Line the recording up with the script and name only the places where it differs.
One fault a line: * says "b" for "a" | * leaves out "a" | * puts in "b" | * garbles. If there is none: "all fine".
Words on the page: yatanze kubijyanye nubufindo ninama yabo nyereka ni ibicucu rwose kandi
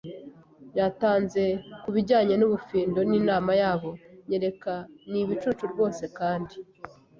all fine